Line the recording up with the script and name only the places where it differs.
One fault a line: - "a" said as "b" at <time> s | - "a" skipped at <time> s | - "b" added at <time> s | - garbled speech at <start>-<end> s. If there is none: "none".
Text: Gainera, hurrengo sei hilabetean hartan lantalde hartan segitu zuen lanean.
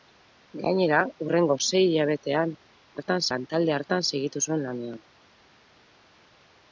none